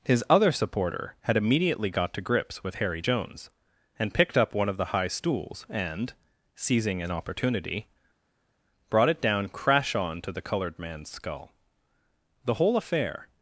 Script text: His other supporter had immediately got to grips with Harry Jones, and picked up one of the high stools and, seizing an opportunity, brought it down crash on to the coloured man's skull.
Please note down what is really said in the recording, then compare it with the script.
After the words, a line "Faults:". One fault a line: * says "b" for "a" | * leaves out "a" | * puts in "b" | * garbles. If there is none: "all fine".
His other supporter had immediately got to grips with Harry Jones, and picked up one of the high stools and, seizing an opportunity, brought it down crash on to the coloured man's skull. The whole affair
Faults:
* puts in "The whole affair"